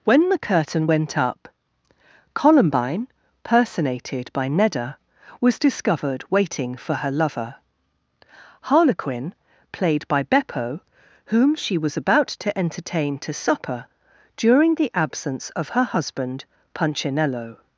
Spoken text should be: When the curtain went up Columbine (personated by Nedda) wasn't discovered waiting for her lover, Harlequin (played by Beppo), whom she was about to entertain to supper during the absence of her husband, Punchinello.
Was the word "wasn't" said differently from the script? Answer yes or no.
yes